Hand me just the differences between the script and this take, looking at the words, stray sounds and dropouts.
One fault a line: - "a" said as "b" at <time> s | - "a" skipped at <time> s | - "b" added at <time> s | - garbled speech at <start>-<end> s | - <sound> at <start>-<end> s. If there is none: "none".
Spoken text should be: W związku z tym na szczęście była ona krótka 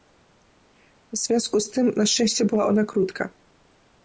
none